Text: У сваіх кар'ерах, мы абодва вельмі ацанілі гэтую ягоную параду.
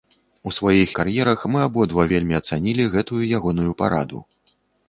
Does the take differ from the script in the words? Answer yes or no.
no